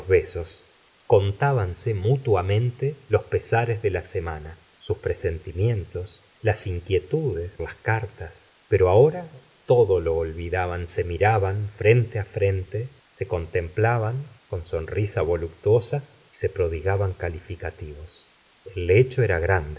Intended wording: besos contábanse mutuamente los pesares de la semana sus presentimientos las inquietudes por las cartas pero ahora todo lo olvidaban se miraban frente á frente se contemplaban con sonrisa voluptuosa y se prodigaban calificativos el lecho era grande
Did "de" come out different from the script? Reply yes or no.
no